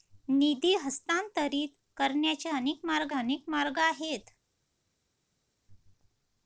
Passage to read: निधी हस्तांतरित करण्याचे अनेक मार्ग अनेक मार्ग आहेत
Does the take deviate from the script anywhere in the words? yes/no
no